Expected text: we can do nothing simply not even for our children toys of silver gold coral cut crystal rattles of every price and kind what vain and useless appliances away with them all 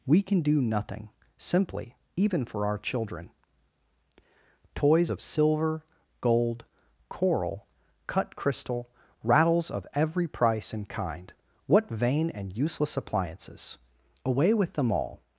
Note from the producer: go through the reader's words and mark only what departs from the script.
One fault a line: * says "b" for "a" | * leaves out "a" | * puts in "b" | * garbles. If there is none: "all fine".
* leaves out "not"